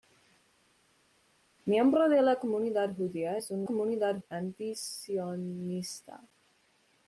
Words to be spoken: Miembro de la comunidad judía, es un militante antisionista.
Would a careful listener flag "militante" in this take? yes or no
yes